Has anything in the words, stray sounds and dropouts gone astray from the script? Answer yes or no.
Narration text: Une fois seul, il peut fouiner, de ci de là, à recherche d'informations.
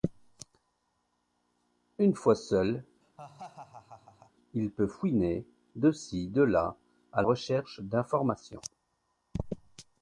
yes